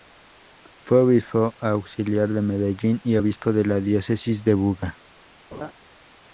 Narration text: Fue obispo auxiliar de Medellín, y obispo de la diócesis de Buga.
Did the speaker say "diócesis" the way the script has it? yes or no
yes